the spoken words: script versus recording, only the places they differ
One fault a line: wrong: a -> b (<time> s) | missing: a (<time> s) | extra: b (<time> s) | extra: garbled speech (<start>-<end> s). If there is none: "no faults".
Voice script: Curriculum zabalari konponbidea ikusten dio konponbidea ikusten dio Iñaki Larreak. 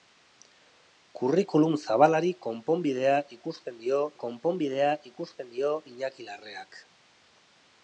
no faults